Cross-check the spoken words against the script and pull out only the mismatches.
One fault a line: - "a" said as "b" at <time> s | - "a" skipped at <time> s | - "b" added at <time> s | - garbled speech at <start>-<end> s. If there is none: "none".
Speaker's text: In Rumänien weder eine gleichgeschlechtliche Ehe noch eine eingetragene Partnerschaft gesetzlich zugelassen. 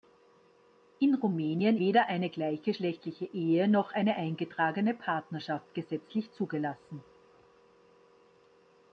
none